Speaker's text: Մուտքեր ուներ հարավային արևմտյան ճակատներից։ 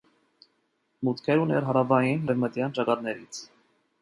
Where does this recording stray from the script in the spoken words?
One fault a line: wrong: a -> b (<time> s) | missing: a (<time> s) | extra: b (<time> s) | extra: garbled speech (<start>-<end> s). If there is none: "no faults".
no faults